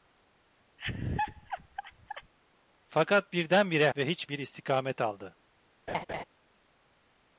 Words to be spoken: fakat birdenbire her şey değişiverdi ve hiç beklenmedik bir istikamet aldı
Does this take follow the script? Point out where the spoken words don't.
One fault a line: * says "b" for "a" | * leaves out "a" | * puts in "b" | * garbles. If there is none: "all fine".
* leaves out "her şey değişiverdi"
* leaves out "beklenmedik"